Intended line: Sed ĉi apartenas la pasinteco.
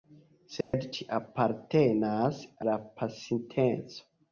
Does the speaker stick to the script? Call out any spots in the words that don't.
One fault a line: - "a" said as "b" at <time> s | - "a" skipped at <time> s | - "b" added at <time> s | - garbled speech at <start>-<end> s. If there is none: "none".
none